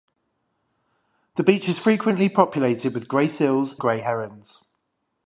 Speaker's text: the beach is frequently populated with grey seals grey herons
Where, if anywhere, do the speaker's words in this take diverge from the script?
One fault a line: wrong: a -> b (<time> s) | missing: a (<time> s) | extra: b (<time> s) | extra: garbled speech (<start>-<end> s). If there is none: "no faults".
no faults